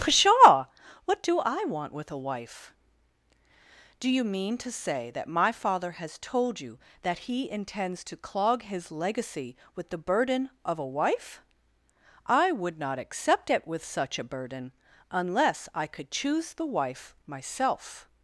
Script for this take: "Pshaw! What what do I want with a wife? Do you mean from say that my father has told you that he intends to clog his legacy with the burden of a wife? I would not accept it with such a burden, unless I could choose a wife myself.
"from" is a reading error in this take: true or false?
true